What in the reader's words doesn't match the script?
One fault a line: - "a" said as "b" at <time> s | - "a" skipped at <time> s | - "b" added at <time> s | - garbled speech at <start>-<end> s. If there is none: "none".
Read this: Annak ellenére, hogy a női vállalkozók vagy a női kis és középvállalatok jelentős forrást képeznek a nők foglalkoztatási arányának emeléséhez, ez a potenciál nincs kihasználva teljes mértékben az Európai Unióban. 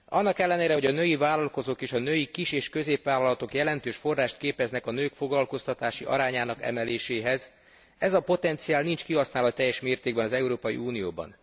- "vagy" said as "és" at 1.8 s